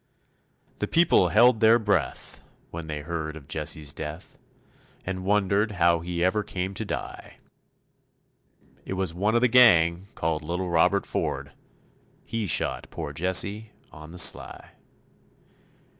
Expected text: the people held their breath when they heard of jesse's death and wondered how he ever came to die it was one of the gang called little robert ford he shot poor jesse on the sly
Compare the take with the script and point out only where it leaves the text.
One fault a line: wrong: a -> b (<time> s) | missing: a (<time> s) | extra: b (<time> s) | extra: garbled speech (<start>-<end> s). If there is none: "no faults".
no faults